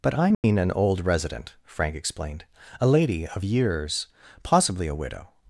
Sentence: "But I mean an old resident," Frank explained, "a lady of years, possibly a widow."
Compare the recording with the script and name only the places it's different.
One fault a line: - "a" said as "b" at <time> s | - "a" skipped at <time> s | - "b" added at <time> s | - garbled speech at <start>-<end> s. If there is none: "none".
none